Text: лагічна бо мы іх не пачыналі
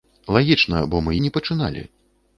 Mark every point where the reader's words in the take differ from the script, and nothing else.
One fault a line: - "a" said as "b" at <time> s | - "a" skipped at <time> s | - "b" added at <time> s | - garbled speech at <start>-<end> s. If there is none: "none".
- "іх" skipped at 1.2 s